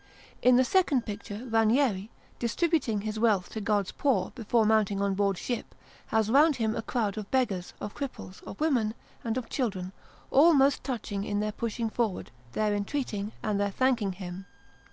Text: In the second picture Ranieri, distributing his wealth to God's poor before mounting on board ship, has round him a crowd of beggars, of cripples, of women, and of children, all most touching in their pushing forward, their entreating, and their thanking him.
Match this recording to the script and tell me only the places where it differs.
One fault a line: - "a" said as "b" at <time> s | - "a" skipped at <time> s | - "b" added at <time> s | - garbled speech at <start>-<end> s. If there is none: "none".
none